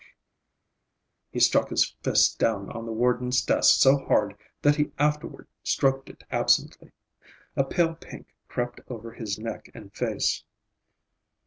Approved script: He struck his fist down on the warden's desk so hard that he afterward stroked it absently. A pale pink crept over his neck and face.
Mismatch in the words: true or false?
false